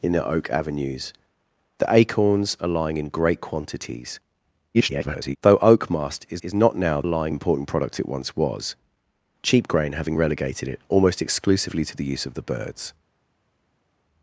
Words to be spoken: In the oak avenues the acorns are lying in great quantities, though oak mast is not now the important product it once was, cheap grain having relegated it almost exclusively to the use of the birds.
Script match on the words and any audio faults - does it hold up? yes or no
no